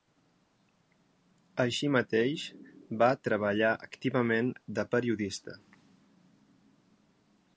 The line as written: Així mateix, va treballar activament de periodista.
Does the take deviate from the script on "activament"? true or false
false